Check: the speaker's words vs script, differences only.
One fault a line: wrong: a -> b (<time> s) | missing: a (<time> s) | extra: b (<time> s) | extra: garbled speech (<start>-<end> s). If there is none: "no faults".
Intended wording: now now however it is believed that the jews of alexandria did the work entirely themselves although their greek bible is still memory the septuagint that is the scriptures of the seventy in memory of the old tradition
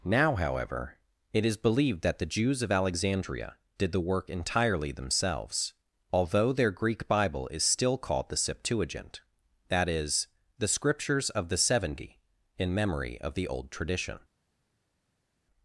missing: now (0.3 s)
wrong: memory -> called (8.0 s)